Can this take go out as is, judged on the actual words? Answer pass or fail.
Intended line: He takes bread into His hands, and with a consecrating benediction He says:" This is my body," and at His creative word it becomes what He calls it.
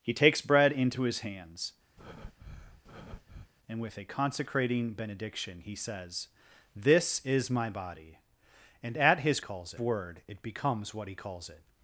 fail